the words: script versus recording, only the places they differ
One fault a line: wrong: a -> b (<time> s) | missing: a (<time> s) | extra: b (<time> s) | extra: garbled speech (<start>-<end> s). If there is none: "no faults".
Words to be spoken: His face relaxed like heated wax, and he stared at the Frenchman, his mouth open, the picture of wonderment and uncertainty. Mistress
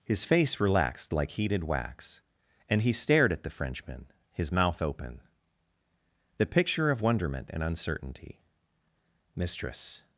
no faults